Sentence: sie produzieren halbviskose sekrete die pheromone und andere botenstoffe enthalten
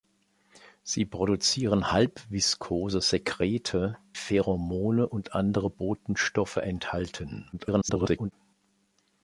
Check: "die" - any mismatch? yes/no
yes